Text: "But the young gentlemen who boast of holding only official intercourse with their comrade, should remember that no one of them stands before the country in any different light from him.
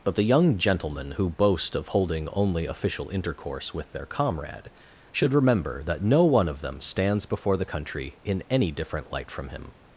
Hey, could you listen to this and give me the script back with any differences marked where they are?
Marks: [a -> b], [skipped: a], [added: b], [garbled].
"But the young gentlemen who boast of holding only official intercourse with their comrade, should remember that no one of them stands before the country in any different light from him.